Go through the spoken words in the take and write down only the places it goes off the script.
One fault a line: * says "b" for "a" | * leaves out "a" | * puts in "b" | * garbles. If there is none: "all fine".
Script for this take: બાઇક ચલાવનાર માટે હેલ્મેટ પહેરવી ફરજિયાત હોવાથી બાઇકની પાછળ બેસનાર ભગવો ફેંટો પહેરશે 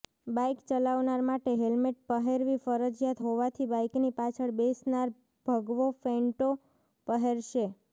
all fine